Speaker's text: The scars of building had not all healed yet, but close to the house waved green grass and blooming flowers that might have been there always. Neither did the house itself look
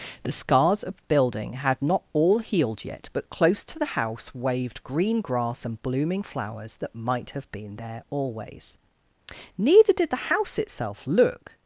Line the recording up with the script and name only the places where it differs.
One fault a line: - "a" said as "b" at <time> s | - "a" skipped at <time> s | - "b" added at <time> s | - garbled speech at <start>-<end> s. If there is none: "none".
none